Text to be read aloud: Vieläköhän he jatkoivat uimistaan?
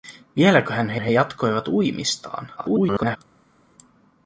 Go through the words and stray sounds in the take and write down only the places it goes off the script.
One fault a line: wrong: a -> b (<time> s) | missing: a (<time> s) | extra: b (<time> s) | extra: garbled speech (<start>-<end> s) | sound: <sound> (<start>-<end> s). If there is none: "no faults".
extra: he (1.0 s)
extra: garbled speech (2.6-3.2 s)